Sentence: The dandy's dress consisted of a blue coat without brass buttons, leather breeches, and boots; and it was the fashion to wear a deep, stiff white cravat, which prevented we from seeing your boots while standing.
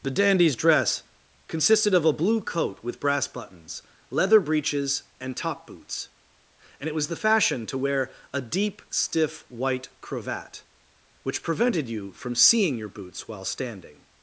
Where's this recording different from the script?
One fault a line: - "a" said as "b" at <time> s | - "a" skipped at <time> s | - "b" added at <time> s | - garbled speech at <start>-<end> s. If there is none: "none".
- "without" said as "with" at 2.8 s
- "top" added at 5.4 s
- "we" said as "you" at 11.9 s